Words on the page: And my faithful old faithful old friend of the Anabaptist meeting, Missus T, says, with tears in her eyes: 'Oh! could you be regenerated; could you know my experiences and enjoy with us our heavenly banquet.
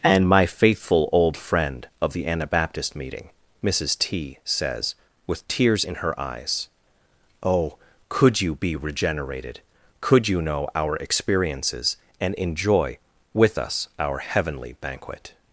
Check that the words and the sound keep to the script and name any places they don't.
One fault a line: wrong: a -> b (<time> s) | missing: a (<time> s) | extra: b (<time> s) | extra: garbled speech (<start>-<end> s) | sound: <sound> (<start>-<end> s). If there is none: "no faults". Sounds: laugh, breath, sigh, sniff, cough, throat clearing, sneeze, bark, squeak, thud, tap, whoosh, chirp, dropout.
missing: faithful old (1.4 s)
wrong: my -> our (10.7 s)